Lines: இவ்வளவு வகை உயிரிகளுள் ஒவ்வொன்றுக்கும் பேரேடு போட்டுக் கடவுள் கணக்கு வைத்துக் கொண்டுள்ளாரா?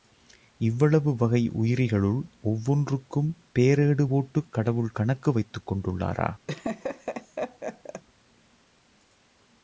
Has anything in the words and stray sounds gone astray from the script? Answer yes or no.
yes